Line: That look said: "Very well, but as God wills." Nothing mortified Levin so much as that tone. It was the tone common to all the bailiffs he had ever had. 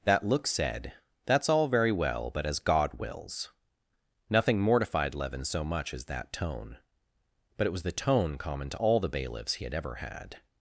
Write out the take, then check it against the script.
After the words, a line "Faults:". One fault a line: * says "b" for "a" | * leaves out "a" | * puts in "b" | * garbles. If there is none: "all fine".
That look said: "That's all very well, but as God wills." Nothing mortified Levin so much as that tone. But it was the tone common to all the bailiffs he had ever had.
Faults:
* puts in "That's all"
* puts in "But"